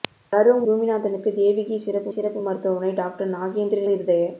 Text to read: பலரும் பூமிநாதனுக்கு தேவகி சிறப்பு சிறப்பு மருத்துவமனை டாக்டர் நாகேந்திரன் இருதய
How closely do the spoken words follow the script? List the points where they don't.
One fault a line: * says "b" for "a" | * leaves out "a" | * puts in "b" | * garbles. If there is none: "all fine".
all fine